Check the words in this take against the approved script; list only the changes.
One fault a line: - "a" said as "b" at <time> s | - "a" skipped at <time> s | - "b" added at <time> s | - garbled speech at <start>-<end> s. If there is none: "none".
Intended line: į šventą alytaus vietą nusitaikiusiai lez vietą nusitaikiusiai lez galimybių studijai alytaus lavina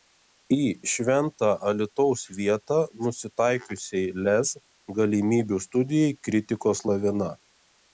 - "vietą nusitaikiusiai lez" skipped at 4.6 s
- "alytaus" said as "kritikos" at 6.3 s